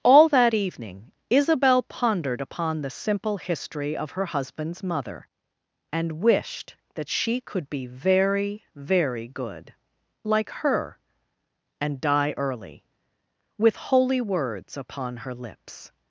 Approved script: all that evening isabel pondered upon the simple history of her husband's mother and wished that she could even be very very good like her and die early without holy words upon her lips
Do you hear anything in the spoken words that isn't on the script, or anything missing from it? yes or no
yes